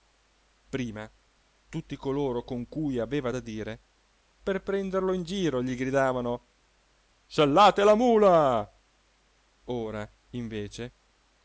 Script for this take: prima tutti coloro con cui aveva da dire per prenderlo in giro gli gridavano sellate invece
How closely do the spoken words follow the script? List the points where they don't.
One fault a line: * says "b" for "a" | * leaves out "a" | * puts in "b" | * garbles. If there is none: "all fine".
* puts in "la mula ora"